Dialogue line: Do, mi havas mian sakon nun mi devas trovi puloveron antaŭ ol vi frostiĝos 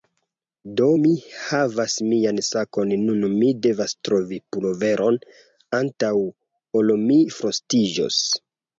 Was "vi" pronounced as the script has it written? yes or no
no